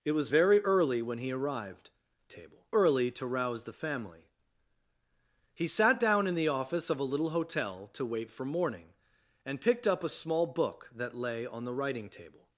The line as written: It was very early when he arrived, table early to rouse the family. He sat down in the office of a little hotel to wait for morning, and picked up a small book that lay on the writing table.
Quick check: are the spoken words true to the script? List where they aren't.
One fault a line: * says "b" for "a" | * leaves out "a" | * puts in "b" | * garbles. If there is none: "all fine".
all fine